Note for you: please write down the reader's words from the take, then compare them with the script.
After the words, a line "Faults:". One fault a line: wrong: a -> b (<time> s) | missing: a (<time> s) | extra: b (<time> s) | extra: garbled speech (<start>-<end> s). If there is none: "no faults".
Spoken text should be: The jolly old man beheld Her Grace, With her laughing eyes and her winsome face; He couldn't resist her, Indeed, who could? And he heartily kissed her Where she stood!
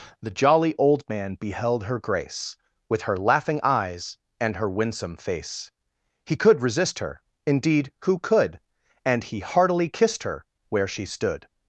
The jolly old man beheld Her Grace, With her laughing eyes and her winsome face; He could resist her, Indeed, who could? And he heartily kissed her Where she stood!
Faults:
wrong: couldn't -> could (6.3 s)